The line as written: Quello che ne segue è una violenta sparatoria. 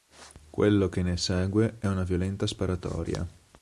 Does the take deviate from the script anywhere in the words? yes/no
no